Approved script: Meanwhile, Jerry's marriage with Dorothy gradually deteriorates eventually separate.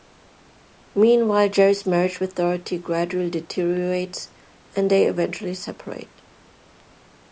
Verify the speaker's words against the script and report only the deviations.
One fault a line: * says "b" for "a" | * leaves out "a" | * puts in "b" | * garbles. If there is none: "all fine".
* puts in "and they"